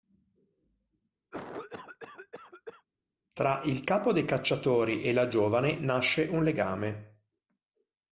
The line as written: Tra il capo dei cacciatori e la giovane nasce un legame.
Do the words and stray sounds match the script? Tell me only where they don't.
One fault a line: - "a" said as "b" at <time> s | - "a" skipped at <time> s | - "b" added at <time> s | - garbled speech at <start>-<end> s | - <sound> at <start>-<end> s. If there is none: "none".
- cough at 1.3-2.9 s